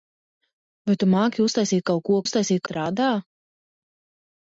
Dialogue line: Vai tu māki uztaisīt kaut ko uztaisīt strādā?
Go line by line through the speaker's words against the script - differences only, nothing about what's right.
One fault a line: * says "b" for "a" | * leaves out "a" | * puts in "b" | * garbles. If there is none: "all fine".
all fine